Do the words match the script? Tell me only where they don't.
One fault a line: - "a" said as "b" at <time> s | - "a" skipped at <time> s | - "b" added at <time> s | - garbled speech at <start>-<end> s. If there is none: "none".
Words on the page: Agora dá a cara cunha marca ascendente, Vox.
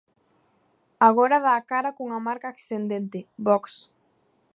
none